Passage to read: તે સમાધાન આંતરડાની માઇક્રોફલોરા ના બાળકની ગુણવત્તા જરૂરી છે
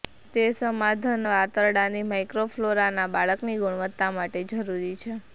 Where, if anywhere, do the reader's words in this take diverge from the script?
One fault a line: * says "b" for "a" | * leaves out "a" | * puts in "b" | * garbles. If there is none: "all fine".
* puts in "માટે"